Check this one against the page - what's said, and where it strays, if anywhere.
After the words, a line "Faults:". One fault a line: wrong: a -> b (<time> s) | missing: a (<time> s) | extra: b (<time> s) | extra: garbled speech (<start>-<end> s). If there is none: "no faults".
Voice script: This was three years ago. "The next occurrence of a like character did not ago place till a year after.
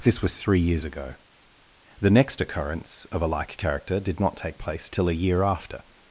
This was three years ago. "The next occurrence of a like character did not take place till a year after.
Faults:
wrong: ago -> take (4.3 s)